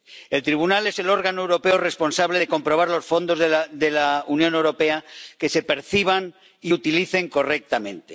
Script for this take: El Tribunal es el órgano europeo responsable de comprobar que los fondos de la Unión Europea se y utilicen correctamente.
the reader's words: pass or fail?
fail